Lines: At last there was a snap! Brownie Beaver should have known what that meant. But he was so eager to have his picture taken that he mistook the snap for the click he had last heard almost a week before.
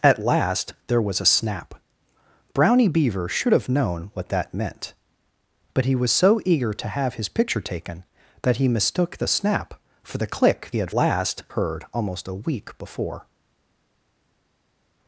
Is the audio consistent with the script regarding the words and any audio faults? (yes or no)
yes